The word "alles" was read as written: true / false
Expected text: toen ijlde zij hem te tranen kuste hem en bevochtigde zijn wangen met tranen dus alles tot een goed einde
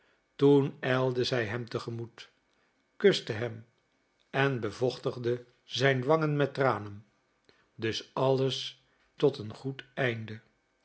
true